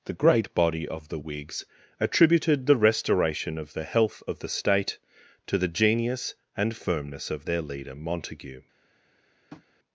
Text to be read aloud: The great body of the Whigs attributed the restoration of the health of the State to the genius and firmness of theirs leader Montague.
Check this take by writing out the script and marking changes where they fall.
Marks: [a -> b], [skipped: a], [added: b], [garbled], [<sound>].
The great body of the Whigs attributed the restoration of the health of the State to the genius and firmness of [theirs -> their] leader Montague. [tap]